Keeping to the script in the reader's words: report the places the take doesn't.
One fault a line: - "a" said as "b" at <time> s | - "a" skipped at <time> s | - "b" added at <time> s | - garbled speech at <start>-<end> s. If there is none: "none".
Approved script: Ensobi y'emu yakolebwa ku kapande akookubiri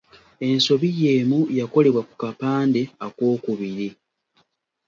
none